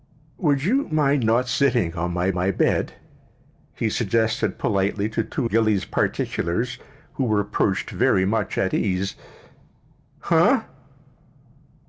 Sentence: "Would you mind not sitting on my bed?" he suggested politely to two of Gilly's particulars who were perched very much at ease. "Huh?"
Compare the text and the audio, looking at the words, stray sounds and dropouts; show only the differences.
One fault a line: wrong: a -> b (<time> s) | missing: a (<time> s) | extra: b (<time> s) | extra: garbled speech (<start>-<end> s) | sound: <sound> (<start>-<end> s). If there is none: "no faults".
extra: my (2.3 s)
missing: of (5.5 s)